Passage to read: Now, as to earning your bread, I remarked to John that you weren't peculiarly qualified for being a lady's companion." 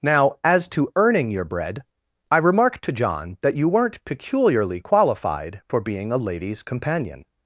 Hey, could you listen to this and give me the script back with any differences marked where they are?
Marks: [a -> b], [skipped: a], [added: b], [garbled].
Now, as to earning your bread, I remarked to John that you weren't peculiarly qualified for being a lady's companion."